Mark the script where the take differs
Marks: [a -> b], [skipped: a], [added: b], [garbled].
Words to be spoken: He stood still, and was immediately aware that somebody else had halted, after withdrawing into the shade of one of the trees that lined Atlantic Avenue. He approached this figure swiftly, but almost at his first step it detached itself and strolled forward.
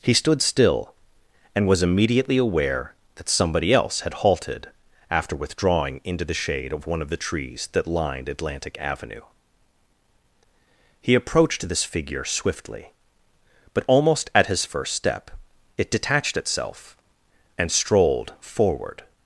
He stood still, and was immediately aware that somebody else had halted, after withdrawing into the shade of one of the trees that lined Atlantic Avenue. He approached this figure swiftly, but almost at his first step it detached itself and strolled forward.